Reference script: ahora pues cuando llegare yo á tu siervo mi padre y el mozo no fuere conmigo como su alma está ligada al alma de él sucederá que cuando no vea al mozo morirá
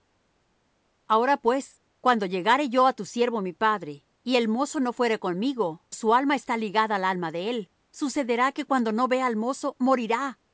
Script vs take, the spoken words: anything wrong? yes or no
yes